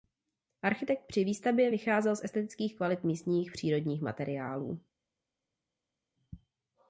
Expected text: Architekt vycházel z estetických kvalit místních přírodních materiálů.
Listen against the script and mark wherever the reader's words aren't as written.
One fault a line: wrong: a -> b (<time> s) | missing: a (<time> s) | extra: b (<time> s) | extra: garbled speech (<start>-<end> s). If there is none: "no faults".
extra: při výstavbě (1.1 s)